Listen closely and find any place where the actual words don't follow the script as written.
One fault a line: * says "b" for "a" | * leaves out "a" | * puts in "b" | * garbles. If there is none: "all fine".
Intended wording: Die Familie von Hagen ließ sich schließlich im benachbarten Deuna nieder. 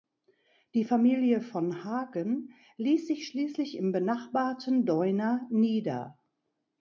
all fine